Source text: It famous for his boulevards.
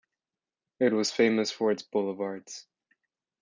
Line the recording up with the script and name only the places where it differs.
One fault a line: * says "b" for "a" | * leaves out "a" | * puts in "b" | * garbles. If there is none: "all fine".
* puts in "was"
* says "its" for "his"